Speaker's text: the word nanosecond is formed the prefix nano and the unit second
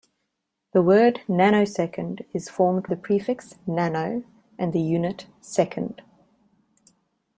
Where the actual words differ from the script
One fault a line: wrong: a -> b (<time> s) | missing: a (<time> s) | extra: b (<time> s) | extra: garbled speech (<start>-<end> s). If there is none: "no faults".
no faults